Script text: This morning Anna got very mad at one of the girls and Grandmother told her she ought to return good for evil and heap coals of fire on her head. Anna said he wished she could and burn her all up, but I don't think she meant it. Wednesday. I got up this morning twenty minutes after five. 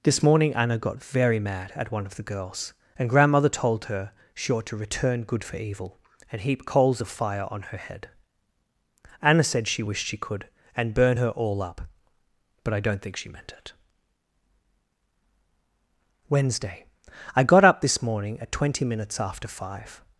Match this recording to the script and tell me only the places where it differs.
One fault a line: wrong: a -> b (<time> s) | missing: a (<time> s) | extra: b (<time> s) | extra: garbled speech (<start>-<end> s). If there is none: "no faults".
wrong: he -> she (9.7 s)
extra: at (18.4 s)